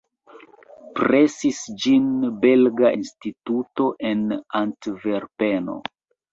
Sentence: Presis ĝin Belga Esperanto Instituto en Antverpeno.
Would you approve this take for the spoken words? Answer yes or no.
no